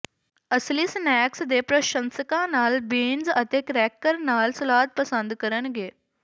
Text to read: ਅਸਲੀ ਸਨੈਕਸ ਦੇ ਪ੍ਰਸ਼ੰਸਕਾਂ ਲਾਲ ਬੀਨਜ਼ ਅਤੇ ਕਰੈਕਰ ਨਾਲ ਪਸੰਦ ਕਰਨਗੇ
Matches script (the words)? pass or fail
fail